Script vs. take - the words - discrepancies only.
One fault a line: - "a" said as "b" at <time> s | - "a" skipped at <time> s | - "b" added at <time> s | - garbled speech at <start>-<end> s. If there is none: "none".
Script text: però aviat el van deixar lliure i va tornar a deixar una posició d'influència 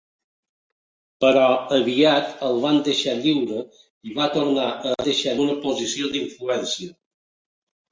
none